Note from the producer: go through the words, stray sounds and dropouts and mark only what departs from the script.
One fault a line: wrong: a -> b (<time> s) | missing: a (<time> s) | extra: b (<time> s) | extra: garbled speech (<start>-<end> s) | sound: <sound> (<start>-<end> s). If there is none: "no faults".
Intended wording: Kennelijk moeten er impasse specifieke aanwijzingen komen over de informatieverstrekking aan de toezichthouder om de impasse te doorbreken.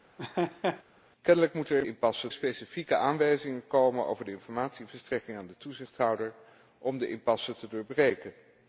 sound: laugh (0.2-0.8 s)